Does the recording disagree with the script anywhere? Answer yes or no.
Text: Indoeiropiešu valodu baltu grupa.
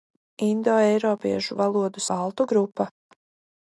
no